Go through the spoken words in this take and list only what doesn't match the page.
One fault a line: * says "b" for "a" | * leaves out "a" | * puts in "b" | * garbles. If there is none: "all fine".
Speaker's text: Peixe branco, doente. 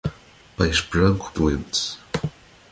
all fine